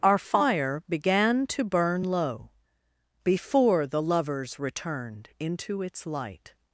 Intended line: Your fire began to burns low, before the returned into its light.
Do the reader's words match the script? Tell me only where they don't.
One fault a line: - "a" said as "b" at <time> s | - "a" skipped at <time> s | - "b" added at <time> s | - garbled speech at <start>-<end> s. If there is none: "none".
- "Your" said as "Our" at 0.0 s
- "burns" said as "burn" at 1.6 s
- "lovers" added at 4.0 s